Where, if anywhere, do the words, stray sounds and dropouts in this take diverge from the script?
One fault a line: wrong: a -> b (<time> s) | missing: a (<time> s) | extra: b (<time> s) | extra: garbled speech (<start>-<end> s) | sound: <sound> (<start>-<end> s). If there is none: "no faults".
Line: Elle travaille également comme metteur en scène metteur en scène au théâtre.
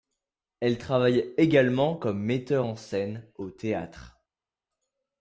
missing: metteur en scène (3.3 s)